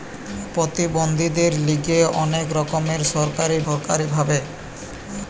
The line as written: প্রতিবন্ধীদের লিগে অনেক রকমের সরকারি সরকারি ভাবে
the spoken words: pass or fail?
pass